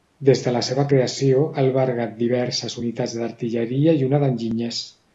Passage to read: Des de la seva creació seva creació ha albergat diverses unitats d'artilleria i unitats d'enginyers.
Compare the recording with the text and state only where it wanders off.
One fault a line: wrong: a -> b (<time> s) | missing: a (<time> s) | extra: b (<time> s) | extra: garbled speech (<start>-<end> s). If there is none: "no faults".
missing: seva creació (1.4 s)
wrong: unitats -> una (4.1 s)